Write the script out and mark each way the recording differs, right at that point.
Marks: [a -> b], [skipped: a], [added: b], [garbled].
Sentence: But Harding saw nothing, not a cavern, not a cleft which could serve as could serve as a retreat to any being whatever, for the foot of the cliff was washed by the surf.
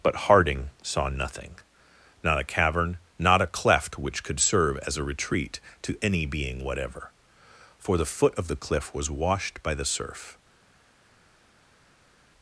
But Harding saw nothing, not a cavern, not a cleft which could serve as [skipped: could serve as] a retreat to any being whatever, for the foot of the cliff was washed by the surf.